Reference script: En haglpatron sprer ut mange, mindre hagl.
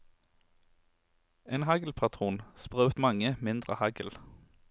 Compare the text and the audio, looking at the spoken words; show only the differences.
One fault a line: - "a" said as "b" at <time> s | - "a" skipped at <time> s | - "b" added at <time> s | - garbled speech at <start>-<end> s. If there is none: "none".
none